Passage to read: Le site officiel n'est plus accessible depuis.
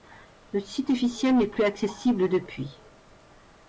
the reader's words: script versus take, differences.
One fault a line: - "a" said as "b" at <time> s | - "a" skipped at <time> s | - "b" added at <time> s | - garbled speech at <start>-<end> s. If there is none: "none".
none